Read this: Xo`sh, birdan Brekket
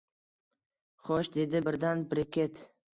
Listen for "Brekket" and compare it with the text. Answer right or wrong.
right